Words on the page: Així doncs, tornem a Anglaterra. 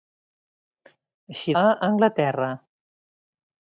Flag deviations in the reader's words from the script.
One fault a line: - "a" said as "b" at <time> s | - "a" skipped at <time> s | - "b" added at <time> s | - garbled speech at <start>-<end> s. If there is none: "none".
- "doncs tornem" skipped at 1.6 s